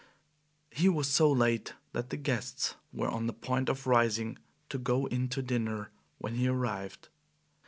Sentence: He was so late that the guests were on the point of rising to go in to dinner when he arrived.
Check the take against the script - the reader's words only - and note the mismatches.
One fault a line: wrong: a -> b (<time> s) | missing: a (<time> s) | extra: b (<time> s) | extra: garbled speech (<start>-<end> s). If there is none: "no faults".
no faults